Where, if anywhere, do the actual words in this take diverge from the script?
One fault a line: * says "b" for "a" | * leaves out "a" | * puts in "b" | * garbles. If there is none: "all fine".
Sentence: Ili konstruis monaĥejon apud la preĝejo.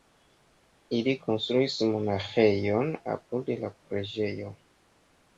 all fine